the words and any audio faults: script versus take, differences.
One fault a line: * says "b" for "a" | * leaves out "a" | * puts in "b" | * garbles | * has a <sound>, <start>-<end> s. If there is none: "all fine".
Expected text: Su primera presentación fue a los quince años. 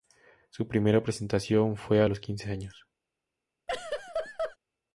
* has a laugh, 3.7-4.6 s